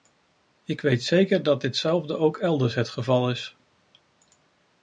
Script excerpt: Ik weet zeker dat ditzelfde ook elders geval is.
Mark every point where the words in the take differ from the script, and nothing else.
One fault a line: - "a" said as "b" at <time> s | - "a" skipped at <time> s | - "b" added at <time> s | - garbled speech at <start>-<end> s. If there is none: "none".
- "het" added at 2.8 s